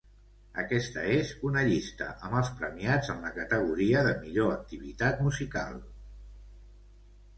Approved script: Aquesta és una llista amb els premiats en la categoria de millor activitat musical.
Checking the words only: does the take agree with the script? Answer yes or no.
yes